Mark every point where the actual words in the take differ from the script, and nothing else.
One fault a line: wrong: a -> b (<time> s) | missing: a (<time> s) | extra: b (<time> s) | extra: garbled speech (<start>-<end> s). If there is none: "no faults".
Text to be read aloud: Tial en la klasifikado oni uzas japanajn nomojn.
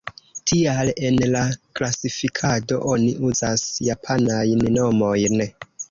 no faults